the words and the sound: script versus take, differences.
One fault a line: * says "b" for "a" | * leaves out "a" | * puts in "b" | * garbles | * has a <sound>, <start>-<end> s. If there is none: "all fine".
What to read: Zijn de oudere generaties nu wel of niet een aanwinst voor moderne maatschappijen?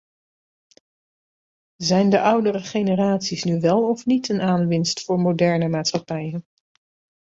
all fine